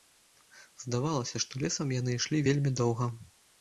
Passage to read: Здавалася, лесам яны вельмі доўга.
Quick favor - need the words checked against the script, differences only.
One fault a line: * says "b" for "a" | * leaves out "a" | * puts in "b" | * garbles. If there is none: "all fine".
* puts in "што"
* puts in "ішлі"